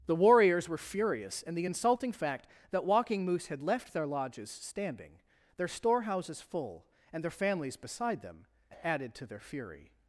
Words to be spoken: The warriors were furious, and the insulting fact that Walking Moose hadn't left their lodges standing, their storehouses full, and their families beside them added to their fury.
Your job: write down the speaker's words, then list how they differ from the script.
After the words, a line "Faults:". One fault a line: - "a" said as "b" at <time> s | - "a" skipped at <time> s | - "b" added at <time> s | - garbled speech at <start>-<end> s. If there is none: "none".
The warriors were furious, and the insulting fact that Walking Moose had left their lodges standing, their storehouses full, and their families beside them added to their fury.
Faults:
- "hadn't" said as "had" at 3.5 s